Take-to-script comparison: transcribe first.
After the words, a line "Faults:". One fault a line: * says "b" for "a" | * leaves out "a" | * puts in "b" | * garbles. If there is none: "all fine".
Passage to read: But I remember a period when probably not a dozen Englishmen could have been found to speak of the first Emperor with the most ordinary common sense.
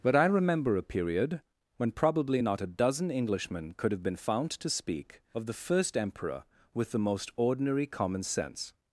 But I remember a period when probably not a dozen Englishmen could have been found to speak of the first Emperor with the most ordinary common sense.
Faults:
all fine